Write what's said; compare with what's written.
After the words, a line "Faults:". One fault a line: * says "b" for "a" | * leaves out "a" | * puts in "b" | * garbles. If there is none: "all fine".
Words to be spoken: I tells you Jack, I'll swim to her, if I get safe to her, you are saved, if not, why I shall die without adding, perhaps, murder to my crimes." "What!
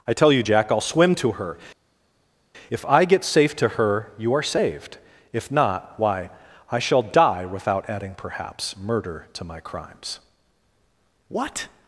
I tell you Jack, I'll swim to her, if I get safe to her, you are saved, if not, why I shall die without adding, perhaps, murder to my crimes." "What!
Faults:
* says "tell" for "tells"